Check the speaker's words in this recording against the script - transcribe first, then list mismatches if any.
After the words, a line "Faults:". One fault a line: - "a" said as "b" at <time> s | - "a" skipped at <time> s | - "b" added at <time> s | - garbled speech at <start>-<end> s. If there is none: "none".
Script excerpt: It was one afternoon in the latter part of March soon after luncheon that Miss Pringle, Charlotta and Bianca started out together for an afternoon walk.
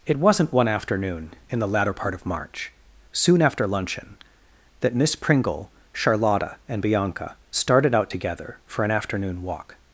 It wasn't one afternoon in the latter part of March soon after luncheon that Miss Pringle, Charlotta and Bianca started out together for an afternoon walk.
Faults:
- "was" said as "wasn't" at 0.1 s